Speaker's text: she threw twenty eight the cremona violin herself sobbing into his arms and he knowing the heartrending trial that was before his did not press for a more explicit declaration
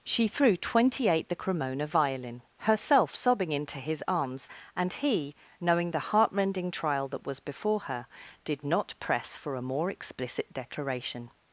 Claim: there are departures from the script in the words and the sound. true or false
true